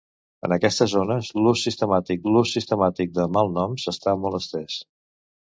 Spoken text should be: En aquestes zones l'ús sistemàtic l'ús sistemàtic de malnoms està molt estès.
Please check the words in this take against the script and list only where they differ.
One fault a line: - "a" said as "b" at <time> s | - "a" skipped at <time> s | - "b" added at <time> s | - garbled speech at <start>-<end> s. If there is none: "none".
none